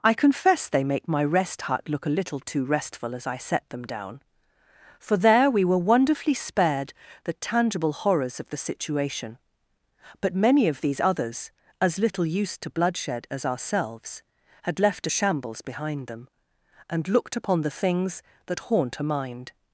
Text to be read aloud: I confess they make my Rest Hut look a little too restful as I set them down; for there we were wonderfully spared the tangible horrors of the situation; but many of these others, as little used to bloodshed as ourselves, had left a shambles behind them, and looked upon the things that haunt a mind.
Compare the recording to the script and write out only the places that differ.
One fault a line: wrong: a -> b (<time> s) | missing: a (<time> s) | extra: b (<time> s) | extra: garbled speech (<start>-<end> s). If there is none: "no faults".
no faults